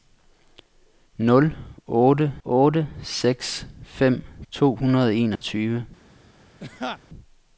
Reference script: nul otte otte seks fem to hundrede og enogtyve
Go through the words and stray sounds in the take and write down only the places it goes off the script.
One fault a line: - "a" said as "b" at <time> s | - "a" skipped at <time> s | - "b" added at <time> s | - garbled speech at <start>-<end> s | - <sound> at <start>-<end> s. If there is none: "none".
- dropout at 5.4-5.4 s
- laugh at 6.6-7.0 s